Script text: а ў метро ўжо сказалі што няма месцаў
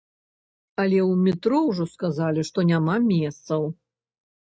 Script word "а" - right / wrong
wrong